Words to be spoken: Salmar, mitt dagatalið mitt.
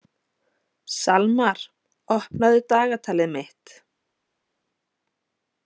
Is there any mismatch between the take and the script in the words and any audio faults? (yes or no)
yes